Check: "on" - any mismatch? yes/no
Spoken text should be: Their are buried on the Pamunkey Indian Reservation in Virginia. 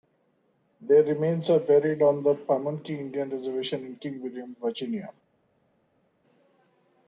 no